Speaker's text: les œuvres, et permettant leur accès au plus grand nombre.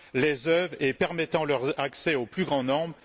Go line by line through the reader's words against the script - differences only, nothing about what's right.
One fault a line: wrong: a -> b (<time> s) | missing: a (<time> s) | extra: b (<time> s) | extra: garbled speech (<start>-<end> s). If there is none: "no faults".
no faults